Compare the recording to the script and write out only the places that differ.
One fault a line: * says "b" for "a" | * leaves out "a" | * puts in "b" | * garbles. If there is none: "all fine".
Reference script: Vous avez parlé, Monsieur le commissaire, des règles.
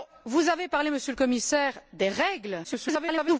* garbles